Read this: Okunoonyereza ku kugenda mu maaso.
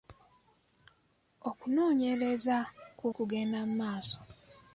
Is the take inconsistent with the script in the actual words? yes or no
no